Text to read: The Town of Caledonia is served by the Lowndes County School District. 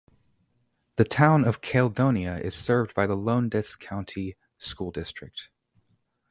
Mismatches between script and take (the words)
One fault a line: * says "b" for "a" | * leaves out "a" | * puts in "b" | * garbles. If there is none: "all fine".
all fine